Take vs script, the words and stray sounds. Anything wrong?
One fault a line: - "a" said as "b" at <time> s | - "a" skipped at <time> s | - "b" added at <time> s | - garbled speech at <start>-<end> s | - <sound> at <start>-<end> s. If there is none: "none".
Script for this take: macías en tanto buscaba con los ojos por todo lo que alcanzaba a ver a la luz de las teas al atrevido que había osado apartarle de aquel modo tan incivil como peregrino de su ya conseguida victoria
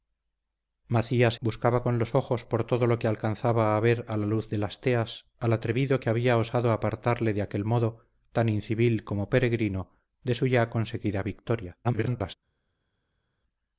- "en tanto" skipped at 1.4 s
- garbled speech at 11.8-12.4 s